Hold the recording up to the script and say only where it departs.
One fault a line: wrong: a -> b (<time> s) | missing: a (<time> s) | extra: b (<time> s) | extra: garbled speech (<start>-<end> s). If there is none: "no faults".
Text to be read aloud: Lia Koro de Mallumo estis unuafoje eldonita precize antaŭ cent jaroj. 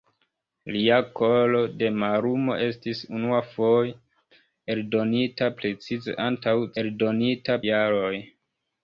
wrong: cent -> eldonita (6.8 s)